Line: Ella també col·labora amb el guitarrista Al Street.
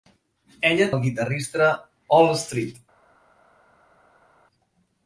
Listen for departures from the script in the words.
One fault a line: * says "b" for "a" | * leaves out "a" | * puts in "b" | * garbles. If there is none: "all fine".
* leaves out "també col·labora amb"